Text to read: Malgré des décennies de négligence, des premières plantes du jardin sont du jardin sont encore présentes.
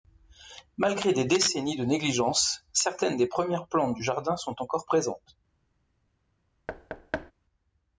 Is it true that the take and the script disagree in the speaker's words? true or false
true